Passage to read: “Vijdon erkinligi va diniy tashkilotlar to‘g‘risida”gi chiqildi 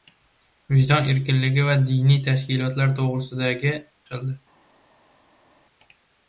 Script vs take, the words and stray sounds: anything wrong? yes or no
no